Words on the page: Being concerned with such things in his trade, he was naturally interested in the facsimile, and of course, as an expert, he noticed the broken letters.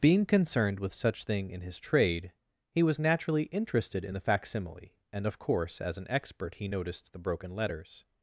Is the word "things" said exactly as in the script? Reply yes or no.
no